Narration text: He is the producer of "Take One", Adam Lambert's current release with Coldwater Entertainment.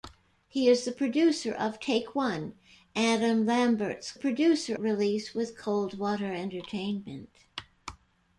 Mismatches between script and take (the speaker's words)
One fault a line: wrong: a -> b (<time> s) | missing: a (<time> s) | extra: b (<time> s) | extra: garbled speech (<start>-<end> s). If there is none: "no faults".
wrong: current -> producer (4.1 s)